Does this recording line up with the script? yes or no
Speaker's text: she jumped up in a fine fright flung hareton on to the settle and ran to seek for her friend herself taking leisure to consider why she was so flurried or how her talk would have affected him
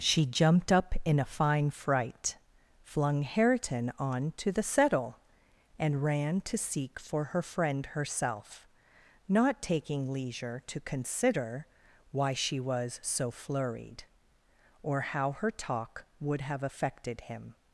no